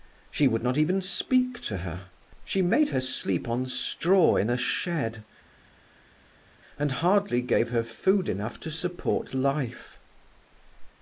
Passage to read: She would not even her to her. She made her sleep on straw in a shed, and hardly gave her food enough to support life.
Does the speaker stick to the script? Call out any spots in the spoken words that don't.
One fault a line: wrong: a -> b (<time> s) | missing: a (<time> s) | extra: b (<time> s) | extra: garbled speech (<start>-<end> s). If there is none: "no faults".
wrong: her -> speak (1.0 s)